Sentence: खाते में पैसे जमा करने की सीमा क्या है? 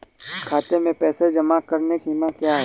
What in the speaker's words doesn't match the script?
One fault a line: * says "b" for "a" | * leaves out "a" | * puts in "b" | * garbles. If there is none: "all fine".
* leaves out "की"